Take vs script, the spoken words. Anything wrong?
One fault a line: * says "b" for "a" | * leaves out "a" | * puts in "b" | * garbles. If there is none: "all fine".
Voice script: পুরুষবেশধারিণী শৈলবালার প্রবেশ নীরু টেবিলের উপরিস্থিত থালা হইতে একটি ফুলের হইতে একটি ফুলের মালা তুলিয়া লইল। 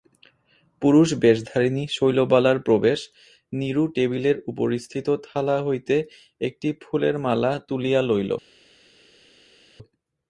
* leaves out "হইতে একটি ফুলের"